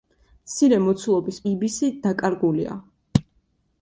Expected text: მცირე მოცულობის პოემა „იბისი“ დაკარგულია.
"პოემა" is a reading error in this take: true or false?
true